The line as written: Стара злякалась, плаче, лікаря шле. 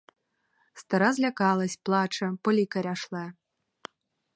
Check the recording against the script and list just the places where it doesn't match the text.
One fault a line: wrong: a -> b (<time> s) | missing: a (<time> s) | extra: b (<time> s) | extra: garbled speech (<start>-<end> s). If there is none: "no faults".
extra: по (2.4 s)